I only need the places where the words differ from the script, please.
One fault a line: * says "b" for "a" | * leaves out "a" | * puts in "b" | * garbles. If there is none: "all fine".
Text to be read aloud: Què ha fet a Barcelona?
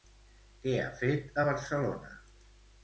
all fine